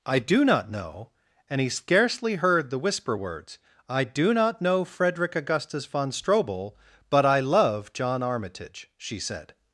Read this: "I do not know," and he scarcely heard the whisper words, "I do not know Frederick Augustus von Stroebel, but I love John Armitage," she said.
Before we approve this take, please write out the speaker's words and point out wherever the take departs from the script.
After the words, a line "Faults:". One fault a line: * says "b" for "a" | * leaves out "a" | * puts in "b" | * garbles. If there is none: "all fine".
"I do not know," and he scarcely heard the whisper words, "I do not know Frederick Augustus von Stroebel, but I love John Armitage," she said.
Faults:
all fine